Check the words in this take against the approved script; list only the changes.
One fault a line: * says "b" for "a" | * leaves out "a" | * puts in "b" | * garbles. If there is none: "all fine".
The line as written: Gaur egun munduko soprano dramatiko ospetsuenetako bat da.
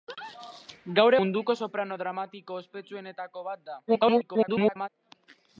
* leaves out "egun"
* garbles